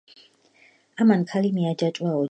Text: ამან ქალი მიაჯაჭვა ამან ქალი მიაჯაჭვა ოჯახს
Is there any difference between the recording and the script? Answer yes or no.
yes